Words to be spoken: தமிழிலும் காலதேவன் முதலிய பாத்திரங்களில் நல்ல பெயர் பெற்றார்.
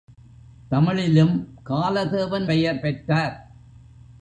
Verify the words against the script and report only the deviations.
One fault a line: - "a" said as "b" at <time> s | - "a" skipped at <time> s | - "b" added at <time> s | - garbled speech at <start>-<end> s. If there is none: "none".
- "முதலிய பாத்திரங்களில் நல்ல" skipped at 2.5 s